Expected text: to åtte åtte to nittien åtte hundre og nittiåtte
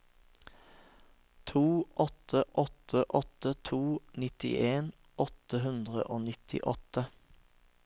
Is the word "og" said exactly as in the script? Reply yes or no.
yes